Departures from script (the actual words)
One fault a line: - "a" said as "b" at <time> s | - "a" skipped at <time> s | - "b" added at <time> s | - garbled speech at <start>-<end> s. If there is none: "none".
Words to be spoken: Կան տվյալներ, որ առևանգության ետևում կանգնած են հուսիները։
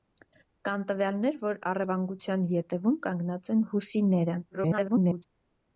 - garbled speech at 4.5-5.2 s